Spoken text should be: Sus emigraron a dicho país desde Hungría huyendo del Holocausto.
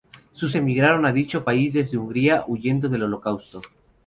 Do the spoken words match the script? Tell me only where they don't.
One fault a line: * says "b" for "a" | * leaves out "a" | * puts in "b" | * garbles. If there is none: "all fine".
all fine